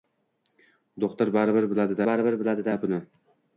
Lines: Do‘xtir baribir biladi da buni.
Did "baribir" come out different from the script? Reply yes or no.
no